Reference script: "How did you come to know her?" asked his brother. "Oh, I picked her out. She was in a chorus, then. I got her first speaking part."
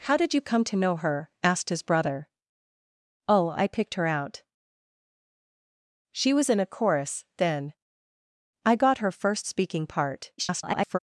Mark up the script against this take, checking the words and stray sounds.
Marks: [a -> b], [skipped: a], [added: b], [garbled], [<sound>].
"How did you come to know her?" asked his brother. "Oh, I picked her out. She was in a chorus, then. I got her first speaking part." [garbled]